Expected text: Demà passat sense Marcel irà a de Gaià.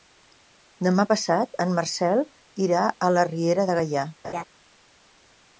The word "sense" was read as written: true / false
false